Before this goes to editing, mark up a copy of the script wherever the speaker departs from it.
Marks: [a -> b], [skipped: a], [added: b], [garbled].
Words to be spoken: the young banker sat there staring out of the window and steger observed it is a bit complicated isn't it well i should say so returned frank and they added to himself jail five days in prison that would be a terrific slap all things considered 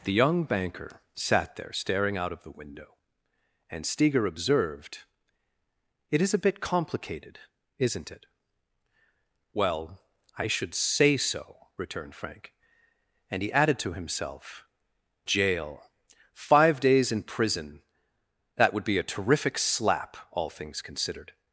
the young banker sat there staring out of the window and steger observed it is a bit complicated isn't it well i should say so returned frank and [they -> he] added to himself jail five days in prison that would be a terrific slap all things considered